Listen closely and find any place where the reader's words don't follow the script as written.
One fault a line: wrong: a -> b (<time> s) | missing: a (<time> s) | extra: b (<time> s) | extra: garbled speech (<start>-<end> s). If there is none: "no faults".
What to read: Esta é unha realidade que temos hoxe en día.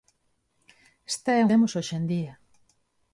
missing: unha realidade que (1.4 s)